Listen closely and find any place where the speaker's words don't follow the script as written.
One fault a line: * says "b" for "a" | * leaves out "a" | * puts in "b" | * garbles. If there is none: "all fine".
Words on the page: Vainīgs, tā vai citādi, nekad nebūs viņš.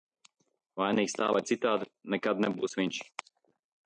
all fine